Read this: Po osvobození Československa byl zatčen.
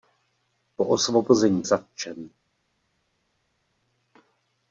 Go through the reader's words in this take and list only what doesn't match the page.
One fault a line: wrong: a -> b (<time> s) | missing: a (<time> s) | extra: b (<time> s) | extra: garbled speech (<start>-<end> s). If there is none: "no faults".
missing: Československa byl (1.6 s)